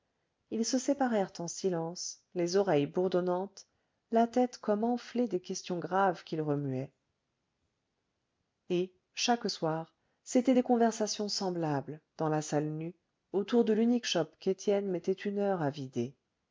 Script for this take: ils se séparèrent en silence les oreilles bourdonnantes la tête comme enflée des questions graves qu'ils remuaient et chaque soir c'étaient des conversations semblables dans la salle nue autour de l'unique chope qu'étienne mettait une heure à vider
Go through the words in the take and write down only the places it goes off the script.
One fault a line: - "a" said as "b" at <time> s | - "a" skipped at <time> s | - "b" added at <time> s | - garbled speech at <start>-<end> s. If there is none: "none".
none